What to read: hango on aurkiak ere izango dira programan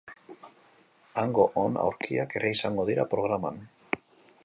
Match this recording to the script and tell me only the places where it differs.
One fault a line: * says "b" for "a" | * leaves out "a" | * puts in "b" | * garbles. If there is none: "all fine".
all fine